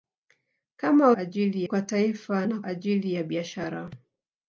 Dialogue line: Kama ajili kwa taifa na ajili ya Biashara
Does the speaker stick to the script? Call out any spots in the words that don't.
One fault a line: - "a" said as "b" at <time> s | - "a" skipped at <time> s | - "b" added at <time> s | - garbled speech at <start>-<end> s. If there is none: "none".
none